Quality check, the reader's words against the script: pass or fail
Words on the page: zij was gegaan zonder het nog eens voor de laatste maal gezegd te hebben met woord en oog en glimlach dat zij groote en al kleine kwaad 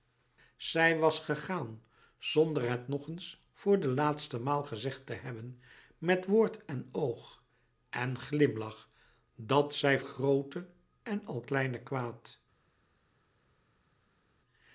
pass